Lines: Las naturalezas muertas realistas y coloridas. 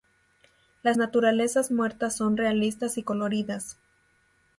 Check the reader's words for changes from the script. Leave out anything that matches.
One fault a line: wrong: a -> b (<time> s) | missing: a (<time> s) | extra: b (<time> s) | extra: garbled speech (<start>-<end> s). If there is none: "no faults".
extra: son (2.2 s)